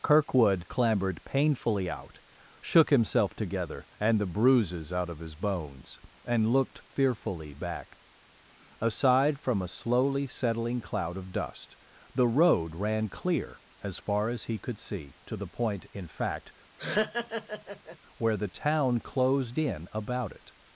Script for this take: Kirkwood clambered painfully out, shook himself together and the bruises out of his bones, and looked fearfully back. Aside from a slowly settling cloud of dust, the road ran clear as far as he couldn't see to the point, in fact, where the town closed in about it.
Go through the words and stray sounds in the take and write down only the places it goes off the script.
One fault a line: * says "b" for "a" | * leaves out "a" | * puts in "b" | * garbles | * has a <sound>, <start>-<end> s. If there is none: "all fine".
* says "could" for "couldn't"
* has a laugh, 16.8-18.0 s